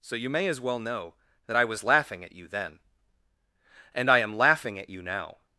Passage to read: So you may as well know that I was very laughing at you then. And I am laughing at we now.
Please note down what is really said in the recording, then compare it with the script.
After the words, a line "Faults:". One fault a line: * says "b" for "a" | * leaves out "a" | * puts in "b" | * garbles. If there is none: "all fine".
So you may as well know that I was laughing at you then. And I am laughing at you now.
Faults:
* leaves out "very"
* says "you" for "we"